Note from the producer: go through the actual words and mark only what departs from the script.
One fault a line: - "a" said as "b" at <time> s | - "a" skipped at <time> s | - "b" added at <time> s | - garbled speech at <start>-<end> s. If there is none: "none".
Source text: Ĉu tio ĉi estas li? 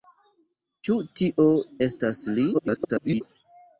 - "ĉi" skipped at 1.5 s
- garbled speech at 2.5-3.2 s